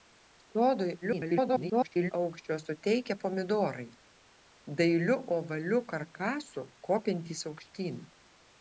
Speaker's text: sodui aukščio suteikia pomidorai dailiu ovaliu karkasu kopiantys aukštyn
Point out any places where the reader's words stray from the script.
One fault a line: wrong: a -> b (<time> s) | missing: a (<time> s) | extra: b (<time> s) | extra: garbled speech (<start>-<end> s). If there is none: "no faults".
extra: garbled speech (1.0-2.1 s)